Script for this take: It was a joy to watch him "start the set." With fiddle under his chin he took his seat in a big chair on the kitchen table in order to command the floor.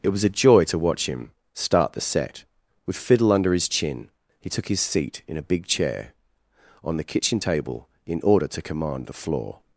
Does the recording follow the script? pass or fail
pass